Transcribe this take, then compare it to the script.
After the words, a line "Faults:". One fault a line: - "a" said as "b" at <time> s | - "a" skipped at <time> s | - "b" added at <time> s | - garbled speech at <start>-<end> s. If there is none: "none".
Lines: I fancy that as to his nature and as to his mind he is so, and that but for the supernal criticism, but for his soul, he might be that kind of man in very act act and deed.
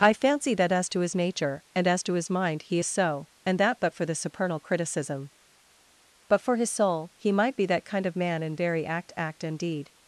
I fancy that as to his nature and as to his mind he is so, and that but for the supernal criticism, but for his soul, he might be that kind of man in very act act and deed.
Faults:
none